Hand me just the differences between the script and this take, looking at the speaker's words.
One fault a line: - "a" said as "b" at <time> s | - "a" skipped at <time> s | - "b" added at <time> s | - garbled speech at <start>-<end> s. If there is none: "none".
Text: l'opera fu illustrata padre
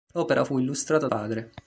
none